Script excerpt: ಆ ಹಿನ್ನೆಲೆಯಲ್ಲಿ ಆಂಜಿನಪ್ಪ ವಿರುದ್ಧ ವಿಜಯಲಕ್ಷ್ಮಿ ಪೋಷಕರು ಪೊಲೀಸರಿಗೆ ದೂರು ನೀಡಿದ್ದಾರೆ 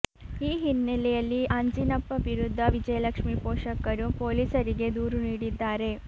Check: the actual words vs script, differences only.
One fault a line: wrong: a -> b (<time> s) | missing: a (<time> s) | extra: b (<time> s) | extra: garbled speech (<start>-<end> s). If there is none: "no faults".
wrong: ಆ -> ಈ (0.4 s)